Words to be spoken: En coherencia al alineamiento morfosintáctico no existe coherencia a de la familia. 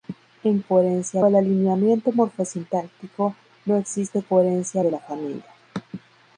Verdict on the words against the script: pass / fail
pass